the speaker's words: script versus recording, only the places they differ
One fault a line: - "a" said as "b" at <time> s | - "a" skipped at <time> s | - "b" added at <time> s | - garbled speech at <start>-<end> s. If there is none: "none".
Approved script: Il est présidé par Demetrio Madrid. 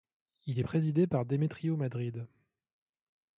none